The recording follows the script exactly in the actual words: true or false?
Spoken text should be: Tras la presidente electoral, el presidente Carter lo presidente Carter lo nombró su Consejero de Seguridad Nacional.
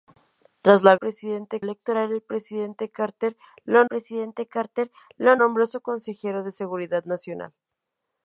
true